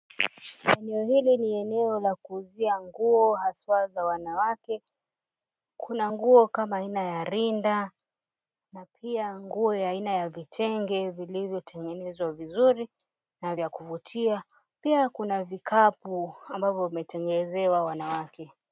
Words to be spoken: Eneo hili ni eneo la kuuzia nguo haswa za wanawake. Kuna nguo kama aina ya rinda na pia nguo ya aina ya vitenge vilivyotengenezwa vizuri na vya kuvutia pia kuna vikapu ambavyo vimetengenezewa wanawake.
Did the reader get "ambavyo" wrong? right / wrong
right